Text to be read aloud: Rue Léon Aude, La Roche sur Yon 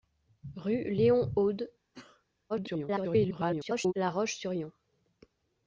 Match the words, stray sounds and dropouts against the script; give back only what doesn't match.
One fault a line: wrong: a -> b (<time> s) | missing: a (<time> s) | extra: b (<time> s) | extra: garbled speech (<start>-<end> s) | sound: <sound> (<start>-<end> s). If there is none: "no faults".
sound: sneeze (1.9-2.3 s)
extra: garbled speech (2.5-3.9 s)